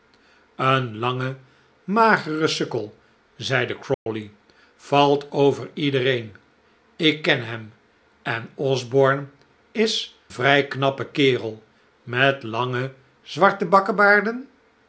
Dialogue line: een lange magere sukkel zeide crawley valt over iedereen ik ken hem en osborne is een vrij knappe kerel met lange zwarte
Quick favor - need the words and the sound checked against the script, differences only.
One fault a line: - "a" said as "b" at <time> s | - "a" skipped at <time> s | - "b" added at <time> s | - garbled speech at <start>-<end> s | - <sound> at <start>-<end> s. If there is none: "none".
- dropout at 3.9-4.1 s
- "een" skipped at 10.2 s